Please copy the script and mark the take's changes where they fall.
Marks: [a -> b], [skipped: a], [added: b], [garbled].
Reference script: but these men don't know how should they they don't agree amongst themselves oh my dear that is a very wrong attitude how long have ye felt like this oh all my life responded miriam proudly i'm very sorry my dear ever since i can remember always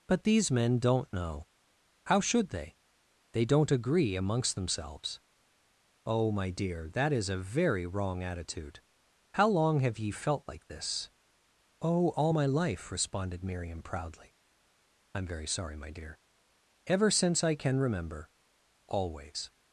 but these men don't know how should they they don't agree amongst themselves oh my dear that is a very wrong attitude how long have ye felt like this oh all my life responded miriam proudly i'm very sorry my dear ever since i can remember always